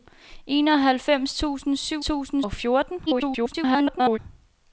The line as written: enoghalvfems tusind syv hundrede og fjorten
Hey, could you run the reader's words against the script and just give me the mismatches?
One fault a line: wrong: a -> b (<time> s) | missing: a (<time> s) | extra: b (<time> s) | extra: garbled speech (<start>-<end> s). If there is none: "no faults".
wrong: hundrede -> tusind (2.0 s)
extra: garbled speech (3.1-4.2 s)